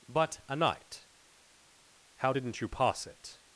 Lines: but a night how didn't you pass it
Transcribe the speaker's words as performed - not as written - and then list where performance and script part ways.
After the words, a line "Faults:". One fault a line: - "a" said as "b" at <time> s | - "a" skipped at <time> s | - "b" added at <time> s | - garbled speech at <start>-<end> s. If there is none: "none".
but a night how didn't you pass it
Faults:
none